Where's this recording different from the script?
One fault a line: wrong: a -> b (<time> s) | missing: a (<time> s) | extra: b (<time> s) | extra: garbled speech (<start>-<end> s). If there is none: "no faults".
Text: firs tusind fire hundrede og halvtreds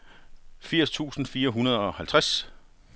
no faults